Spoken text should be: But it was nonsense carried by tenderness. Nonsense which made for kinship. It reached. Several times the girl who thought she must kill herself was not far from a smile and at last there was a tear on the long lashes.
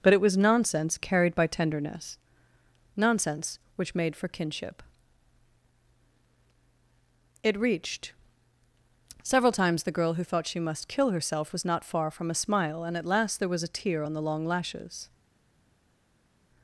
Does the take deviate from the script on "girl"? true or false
false